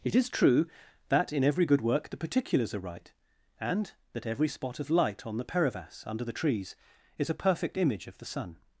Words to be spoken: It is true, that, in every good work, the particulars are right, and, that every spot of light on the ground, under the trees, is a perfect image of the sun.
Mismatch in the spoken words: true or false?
true